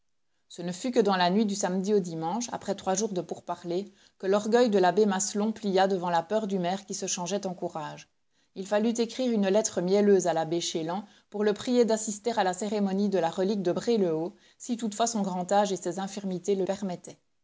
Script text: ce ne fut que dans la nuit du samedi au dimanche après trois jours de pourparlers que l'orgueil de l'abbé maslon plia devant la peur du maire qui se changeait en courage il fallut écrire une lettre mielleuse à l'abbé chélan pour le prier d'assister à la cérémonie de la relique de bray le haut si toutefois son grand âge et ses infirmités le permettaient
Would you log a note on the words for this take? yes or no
no